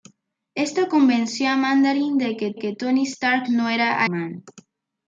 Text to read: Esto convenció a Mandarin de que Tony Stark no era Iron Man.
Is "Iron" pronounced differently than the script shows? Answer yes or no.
yes